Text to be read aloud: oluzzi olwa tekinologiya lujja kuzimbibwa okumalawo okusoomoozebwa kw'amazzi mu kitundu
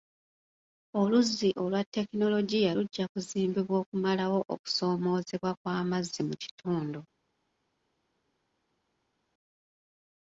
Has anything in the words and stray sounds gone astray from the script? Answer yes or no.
no